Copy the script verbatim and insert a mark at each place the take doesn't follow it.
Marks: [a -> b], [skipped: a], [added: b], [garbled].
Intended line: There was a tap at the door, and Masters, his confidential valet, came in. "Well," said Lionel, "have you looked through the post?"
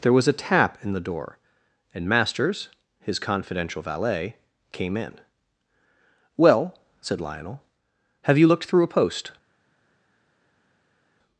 There was a tap [at -> in] the door, and Masters, his confidential valet, came in. "Well," said Lionel, "have you looked through [the -> a] post?"